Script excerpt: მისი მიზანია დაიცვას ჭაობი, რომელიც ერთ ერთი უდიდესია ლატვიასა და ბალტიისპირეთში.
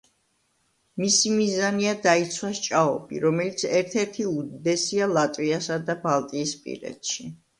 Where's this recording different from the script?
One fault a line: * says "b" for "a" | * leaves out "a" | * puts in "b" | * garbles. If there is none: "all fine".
all fine